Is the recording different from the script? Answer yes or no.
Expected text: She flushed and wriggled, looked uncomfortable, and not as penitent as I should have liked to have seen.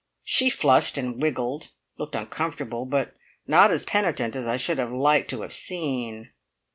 yes